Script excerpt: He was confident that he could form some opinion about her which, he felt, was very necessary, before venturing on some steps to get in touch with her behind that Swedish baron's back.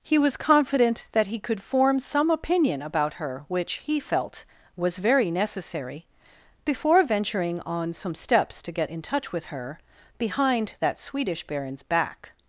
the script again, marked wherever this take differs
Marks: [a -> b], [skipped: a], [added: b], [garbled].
He was confident that he could form some opinion about her which, he felt, was very necessary, before venturing on some steps to get in touch with her behind that Swedish baron's back.